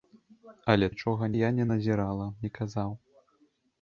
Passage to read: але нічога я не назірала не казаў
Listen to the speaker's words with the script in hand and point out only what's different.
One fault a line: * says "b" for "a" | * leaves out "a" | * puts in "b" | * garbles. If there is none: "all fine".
all fine